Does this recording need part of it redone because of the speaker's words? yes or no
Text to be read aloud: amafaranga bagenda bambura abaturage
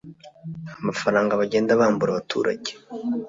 no